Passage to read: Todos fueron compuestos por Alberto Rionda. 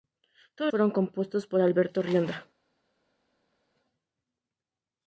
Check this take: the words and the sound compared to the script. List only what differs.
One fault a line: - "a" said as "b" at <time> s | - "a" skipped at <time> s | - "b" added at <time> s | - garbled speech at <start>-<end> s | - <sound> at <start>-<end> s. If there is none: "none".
none